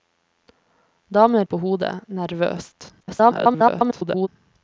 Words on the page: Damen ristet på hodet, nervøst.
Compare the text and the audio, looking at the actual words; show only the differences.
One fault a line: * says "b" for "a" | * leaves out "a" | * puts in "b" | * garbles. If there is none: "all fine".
* leaves out "ristet"
* garbles